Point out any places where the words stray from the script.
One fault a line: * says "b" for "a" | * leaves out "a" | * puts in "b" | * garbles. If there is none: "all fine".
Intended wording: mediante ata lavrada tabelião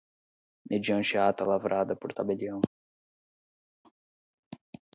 * puts in "por"